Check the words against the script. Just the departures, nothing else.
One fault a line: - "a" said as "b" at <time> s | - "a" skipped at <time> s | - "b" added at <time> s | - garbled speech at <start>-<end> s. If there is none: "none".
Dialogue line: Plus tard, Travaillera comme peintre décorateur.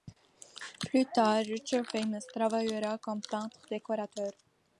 - "Richard Famous" added at 1.4 s